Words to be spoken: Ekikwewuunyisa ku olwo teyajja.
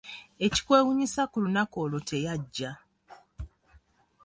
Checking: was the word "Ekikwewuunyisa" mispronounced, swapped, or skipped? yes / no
no